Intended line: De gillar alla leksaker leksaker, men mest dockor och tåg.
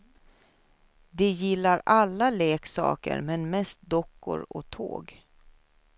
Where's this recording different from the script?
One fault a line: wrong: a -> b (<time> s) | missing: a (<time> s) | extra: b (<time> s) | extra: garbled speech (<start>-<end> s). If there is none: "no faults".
missing: leksaker (3.2 s)